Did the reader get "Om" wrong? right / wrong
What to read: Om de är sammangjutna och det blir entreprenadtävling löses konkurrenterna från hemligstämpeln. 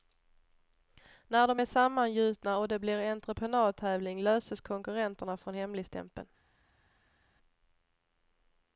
wrong